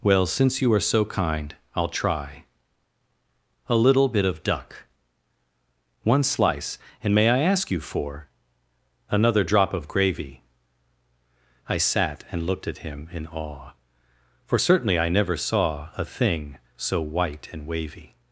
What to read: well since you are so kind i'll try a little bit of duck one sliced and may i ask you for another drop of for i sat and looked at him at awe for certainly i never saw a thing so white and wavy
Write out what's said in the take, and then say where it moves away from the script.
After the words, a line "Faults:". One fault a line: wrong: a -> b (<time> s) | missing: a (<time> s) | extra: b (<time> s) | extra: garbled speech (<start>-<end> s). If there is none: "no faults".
well since you are so kind i'll try a little bit of duck one slice and may i ask you for another drop of gravy i sat and looked at him in awe for certainly i never saw a thing so white and wavy
Faults:
wrong: sliced -> slice (6.2 s)
wrong: for -> gravy (9.9 s)
wrong: at -> in (13.1 s)